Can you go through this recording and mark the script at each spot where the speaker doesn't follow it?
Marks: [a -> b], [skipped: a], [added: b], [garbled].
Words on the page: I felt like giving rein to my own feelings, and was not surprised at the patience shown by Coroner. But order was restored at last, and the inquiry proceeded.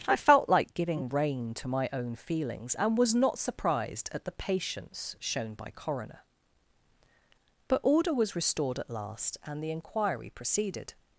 I felt like giving rein to my own feelings, and was not surprised at the patience shown by Coroner. But order was restored at last, and the inquiry proceeded.